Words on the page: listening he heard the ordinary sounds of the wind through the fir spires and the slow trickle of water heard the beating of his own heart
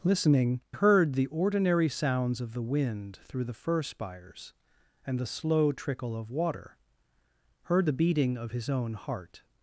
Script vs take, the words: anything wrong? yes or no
yes